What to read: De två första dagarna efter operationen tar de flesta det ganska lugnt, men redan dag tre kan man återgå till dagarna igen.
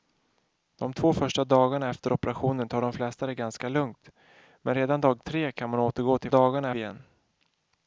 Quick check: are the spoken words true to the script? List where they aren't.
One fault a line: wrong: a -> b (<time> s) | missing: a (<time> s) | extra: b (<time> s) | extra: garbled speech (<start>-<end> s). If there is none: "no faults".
no faults